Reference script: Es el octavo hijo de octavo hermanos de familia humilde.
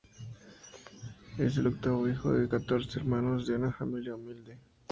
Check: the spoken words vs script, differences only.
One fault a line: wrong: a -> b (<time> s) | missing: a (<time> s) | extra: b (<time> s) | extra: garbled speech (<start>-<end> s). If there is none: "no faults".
wrong: octavo -> catorce (2.5 s)
extra: una (3.5 s)